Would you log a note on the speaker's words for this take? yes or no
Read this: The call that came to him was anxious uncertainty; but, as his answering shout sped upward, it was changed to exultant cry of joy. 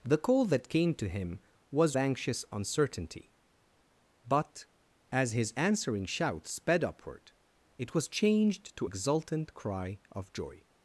no